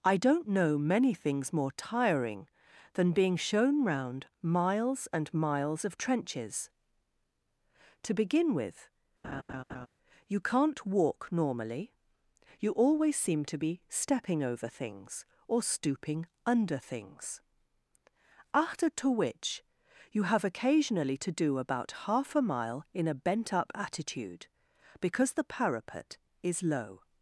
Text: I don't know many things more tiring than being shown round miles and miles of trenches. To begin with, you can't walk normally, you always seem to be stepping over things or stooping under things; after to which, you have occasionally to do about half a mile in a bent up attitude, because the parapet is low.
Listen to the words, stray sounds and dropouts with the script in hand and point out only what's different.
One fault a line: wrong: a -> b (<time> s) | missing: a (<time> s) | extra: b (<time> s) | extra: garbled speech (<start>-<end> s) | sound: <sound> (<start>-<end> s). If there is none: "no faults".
sound: laugh (9.2-9.9 s)